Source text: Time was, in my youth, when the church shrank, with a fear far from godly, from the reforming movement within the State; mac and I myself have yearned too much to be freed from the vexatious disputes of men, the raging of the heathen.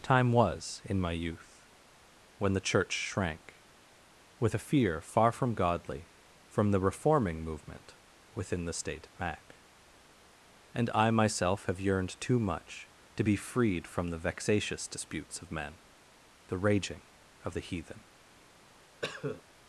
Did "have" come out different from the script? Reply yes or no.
no